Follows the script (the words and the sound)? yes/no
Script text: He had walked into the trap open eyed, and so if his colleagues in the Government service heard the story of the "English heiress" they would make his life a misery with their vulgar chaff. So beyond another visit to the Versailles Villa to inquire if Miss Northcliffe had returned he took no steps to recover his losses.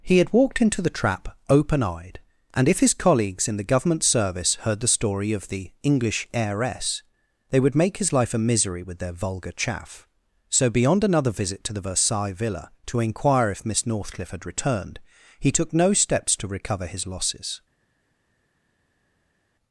no